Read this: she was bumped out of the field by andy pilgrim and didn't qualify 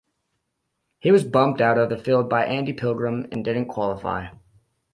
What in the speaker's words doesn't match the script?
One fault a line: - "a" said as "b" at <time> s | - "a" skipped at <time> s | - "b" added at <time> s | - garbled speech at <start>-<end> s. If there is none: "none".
- "she" said as "he" at 1.0 s